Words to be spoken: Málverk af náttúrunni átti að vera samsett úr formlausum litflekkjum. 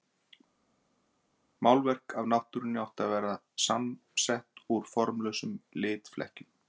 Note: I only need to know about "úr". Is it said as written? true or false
true